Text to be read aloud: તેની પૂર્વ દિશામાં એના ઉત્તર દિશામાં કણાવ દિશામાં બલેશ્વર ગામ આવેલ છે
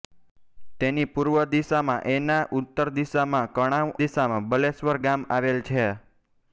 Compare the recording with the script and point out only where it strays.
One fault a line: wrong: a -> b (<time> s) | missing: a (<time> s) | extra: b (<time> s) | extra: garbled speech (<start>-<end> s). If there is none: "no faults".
no faults